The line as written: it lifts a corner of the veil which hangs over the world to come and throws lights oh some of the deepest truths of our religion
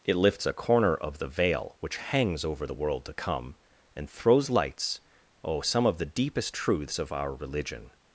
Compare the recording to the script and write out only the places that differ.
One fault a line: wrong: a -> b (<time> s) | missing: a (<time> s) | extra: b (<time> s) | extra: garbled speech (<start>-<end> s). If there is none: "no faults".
no faults